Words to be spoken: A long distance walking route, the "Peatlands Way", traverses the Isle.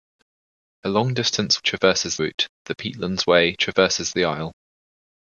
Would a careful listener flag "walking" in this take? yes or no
yes